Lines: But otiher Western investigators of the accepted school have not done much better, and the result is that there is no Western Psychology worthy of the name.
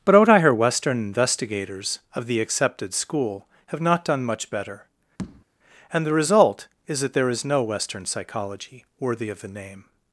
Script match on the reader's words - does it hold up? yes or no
yes